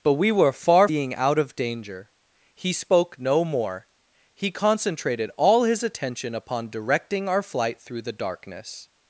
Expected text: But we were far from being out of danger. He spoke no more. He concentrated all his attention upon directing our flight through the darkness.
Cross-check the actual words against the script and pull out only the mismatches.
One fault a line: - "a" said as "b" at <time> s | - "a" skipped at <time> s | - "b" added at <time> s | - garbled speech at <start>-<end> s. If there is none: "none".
- "from" skipped at 0.9 s